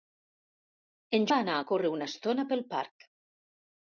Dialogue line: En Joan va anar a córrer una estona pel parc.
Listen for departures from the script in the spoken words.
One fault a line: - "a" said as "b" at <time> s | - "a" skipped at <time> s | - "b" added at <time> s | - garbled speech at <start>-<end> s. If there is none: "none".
- "Joan" skipped at 1.3 s